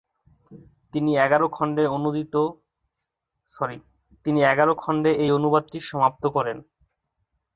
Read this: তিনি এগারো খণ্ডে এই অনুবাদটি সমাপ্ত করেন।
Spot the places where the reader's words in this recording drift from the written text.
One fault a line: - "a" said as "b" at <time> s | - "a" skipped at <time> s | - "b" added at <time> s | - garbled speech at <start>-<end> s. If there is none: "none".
none